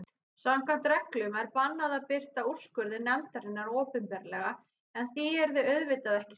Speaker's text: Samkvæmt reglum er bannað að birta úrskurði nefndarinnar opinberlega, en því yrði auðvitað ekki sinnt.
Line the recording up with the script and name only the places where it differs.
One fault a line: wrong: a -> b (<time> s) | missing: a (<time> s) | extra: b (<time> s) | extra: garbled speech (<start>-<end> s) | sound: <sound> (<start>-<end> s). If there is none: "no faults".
no faults